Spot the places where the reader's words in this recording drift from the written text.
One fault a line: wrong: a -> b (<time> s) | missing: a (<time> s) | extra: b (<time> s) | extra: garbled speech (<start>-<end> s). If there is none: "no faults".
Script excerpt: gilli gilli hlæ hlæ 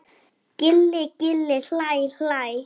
no faults